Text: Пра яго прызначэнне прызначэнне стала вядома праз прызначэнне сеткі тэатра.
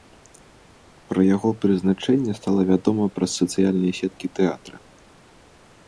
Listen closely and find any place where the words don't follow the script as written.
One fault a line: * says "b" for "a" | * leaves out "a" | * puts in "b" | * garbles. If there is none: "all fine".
* leaves out "прызначэнне"
* says "сацыяльныя" for "прызначэнне"